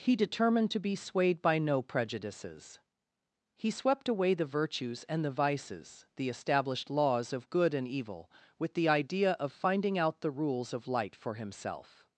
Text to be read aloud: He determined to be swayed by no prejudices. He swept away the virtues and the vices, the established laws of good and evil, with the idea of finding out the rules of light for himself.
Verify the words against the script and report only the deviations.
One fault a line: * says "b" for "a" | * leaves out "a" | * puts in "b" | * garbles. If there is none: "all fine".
all fine